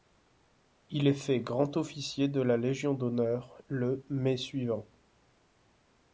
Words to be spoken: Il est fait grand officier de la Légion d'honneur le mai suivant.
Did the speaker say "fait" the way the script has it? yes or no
yes